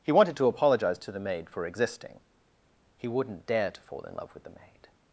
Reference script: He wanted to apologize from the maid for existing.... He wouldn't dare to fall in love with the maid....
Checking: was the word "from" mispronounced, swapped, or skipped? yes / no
yes